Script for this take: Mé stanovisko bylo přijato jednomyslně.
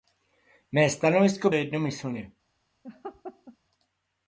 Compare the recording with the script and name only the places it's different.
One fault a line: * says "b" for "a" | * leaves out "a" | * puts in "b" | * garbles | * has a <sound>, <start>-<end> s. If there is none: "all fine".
* leaves out "bylo přijato"
* has a laugh, 2.8-3.6 s